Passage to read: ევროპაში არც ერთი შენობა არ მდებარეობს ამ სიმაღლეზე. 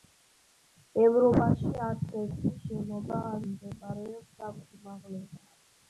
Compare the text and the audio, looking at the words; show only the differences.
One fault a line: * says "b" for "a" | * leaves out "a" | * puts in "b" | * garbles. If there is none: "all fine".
all fine